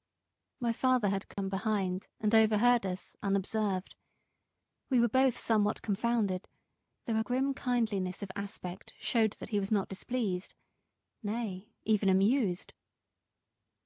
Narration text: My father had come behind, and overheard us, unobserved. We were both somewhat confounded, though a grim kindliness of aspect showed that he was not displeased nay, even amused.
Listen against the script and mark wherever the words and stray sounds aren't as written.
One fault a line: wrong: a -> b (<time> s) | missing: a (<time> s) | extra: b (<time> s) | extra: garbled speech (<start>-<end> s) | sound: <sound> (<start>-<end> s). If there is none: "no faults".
sound: dropout (1.3-1.4 s)